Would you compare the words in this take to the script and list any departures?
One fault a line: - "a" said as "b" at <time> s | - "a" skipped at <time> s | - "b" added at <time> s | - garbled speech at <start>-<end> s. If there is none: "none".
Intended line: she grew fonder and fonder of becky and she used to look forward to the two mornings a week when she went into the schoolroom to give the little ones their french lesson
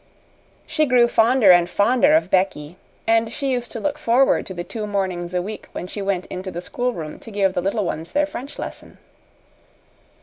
none